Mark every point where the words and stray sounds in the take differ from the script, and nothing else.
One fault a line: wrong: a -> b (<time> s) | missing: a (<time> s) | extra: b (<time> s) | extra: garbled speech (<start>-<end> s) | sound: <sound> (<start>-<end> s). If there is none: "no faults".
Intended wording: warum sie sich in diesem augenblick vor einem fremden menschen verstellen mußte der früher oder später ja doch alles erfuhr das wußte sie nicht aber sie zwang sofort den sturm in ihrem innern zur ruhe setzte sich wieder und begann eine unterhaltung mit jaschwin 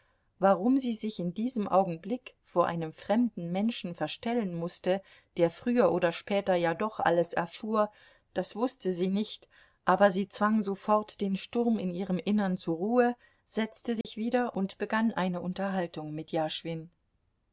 sound: dropout (14.0-14.0 s)